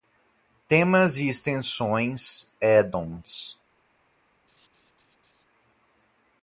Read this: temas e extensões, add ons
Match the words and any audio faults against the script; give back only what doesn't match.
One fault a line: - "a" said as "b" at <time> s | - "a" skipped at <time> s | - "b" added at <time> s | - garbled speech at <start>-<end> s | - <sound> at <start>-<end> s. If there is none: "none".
- laugh at 4.5-5.4 s